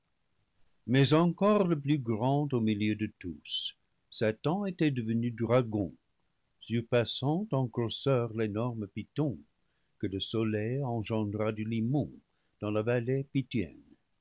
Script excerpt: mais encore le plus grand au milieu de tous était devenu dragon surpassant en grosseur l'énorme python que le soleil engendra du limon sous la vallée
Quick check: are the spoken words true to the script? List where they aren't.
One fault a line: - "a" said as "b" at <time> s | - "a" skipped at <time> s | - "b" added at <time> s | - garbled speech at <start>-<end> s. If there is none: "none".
- "satan" added at 4.1 s
- "sous" said as "dans" at 12.6 s